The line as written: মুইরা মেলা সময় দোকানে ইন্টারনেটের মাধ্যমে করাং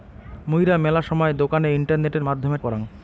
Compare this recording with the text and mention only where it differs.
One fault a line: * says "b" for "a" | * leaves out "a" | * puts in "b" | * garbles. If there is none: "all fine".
all fine